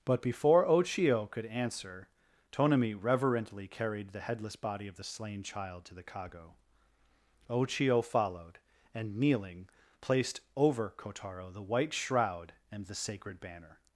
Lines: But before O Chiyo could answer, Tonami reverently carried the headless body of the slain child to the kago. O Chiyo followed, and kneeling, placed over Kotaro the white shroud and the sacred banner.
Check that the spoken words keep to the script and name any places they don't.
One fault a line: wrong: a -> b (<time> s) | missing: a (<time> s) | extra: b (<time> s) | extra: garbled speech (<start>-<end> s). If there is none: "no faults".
no faults